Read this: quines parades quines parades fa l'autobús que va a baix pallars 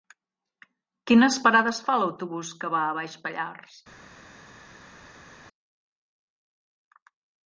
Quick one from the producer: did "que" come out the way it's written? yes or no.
yes